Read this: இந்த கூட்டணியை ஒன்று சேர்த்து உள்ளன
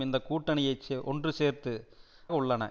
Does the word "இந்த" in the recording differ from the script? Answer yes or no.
no